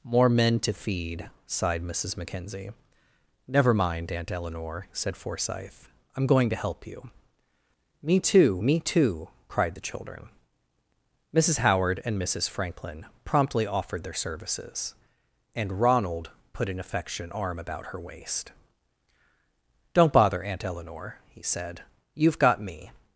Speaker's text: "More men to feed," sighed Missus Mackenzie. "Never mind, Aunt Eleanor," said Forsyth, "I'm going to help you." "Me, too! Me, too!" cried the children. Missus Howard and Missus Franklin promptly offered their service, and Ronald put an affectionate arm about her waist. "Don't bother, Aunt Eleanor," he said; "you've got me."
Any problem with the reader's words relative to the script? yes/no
yes